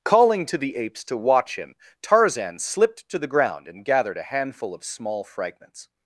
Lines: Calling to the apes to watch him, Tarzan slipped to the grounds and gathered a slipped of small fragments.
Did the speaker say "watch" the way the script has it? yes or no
yes